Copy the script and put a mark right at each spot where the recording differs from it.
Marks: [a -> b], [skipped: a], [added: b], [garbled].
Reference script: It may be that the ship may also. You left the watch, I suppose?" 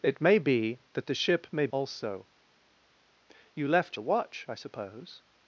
It may be that the ship may also. You left the watch, I suppose?"